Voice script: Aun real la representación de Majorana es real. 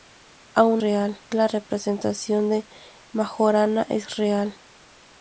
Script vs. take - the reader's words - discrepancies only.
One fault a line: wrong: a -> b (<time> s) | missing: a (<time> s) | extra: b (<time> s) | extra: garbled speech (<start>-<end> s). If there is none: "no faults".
no faults